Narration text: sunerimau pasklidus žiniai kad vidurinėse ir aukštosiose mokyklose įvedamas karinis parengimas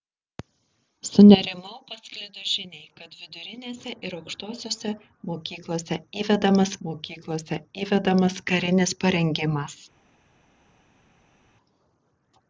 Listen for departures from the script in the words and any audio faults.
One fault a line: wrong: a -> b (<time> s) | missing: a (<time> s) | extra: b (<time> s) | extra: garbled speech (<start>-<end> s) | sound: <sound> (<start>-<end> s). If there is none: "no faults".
extra: mokyklose įvedamas (6.9 s)